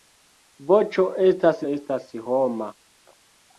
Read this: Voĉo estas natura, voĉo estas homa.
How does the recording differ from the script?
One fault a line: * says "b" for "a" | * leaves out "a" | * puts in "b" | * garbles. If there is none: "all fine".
* leaves out "natura voĉo"